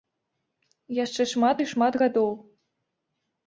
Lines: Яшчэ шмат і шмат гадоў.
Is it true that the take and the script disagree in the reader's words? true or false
false